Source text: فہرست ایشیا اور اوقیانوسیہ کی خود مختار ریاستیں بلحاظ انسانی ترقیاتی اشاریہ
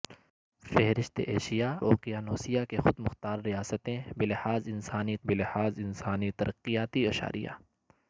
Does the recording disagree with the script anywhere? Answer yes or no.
yes